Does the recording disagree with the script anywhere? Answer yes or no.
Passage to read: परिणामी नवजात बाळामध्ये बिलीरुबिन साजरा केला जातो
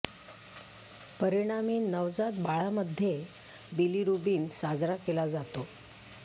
no